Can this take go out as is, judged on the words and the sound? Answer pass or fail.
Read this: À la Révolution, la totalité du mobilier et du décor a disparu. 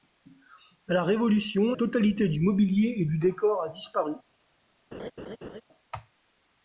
fail